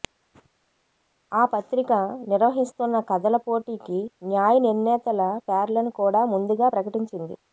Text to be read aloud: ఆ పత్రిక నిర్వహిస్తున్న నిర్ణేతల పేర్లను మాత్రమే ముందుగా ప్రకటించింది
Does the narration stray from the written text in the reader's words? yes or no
yes